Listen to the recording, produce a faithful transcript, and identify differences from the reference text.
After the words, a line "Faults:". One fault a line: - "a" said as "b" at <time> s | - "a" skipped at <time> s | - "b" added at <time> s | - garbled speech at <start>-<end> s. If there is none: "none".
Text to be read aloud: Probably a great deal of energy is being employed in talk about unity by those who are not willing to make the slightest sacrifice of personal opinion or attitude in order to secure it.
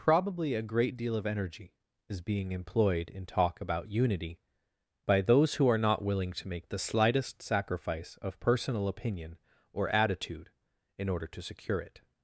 Probably a great deal of energy is being employed in talk about unity by those who are not willing to make the slightest sacrifice of personal opinion or attitude in order to secure it.
Faults:
none